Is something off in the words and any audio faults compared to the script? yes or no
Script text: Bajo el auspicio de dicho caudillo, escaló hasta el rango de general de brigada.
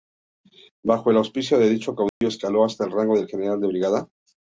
yes